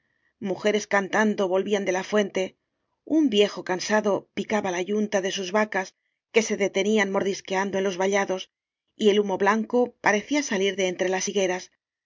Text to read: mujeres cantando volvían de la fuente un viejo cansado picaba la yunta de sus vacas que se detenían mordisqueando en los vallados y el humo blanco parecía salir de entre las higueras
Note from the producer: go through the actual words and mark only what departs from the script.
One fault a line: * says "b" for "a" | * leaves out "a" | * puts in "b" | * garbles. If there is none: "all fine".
all fine